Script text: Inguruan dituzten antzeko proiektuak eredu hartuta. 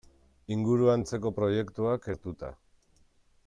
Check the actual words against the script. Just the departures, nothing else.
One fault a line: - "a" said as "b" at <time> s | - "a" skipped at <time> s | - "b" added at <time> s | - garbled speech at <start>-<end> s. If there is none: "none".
- "dituzten" skipped at 1.0 s
- "eredu" skipped at 2.1 s